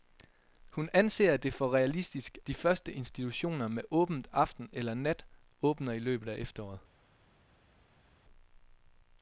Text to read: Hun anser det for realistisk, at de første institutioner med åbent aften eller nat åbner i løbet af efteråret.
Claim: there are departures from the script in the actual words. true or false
true